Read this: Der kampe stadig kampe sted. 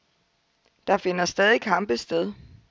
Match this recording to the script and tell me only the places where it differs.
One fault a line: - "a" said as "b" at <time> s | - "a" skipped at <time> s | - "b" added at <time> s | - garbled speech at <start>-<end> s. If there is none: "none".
- "kampe" said as "finder" at 1.0 s